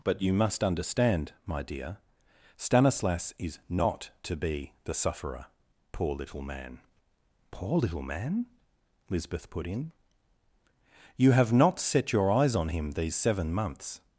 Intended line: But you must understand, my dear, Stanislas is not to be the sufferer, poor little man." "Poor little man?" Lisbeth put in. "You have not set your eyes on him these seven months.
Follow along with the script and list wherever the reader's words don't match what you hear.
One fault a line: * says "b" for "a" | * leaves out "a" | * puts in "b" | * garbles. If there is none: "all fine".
all fine